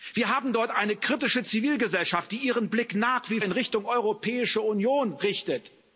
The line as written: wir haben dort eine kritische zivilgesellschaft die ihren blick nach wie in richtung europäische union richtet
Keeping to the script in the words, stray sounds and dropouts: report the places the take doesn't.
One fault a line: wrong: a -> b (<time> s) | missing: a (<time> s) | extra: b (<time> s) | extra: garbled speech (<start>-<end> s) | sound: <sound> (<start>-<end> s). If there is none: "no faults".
no faults